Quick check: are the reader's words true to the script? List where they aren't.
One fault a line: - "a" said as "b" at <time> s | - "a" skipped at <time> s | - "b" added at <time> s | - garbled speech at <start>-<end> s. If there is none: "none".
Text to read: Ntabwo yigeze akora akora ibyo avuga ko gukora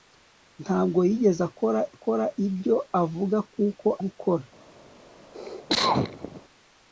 none